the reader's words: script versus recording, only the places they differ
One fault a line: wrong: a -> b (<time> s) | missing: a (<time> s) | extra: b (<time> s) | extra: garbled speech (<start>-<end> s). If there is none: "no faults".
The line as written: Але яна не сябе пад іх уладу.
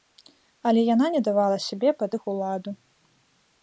extra: давала (1.3 s)